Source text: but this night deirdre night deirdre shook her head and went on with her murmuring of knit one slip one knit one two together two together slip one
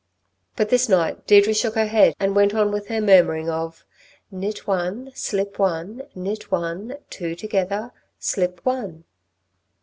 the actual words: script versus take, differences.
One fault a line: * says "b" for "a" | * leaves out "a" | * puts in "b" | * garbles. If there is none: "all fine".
* leaves out "night deirdre"
* leaves out "two together"